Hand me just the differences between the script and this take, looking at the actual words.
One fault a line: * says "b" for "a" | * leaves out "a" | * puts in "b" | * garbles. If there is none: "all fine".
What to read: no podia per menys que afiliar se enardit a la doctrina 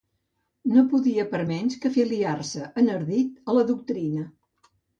all fine